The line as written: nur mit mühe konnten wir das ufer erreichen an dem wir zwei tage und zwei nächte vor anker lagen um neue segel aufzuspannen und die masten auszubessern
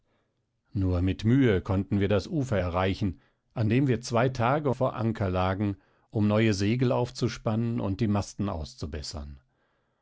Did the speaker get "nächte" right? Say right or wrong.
wrong